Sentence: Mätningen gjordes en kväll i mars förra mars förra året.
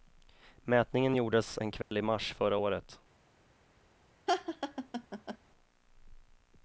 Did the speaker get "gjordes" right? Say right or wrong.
right